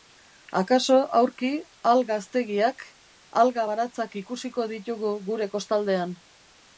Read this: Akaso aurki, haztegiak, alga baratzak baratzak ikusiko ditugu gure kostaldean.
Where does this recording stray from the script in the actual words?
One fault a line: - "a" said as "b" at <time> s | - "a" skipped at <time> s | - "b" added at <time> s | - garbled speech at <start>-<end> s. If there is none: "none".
- "alga" added at 1.9 s
- "baratzak" skipped at 4.2 s